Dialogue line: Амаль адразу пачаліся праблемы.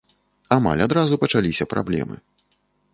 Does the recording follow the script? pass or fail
pass